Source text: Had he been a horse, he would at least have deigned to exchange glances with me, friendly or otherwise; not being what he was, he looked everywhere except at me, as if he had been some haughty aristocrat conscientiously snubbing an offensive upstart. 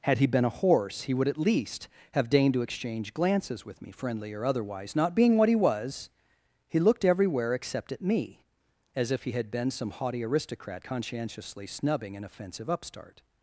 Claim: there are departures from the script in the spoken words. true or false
false